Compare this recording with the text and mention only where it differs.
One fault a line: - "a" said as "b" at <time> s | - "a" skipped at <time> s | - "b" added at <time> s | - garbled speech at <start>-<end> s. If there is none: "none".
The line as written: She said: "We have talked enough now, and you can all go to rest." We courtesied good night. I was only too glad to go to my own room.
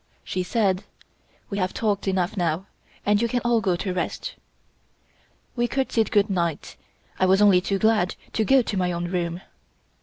none